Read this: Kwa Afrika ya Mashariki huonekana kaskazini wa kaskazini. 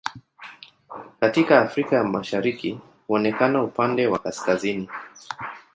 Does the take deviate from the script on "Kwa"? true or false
true